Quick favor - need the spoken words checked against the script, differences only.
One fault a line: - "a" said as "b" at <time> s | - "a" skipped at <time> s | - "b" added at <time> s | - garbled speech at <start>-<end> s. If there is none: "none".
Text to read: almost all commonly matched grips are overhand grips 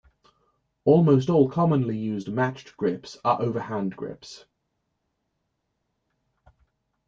- "used" added at 2.0 s